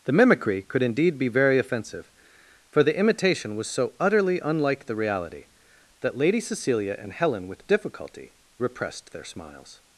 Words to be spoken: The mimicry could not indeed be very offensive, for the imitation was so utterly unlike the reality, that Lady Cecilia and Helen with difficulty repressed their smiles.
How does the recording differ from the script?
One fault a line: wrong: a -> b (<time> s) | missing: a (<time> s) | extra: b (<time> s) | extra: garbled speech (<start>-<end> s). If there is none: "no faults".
missing: not (0.8 s)